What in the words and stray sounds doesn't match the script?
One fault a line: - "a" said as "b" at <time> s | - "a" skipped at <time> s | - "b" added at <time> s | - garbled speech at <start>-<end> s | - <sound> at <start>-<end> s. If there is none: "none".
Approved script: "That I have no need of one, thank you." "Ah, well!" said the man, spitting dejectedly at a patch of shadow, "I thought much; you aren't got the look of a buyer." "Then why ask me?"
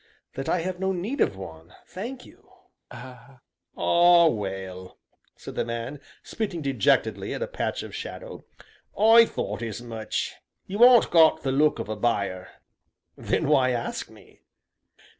- laugh at 2.9-3.4 s
- "as" added at 9.6 s